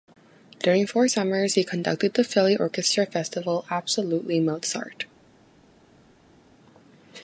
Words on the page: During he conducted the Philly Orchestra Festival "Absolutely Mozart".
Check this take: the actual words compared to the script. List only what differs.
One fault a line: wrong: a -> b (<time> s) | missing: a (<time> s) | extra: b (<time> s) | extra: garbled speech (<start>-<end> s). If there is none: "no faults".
extra: four summers (0.9 s)